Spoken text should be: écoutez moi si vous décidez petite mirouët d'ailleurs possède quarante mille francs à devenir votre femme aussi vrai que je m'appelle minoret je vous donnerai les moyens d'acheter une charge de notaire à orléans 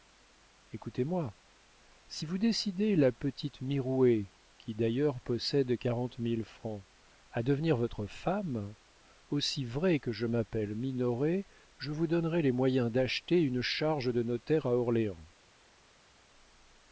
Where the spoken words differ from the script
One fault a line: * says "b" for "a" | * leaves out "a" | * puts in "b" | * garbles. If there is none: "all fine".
* puts in "la"
* puts in "qui"